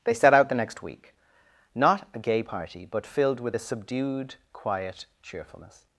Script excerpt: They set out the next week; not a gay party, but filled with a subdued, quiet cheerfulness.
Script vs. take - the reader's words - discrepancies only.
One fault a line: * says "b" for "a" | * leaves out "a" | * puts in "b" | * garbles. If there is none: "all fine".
all fine